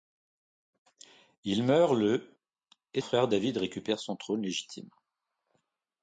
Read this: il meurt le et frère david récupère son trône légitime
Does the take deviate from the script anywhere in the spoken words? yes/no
no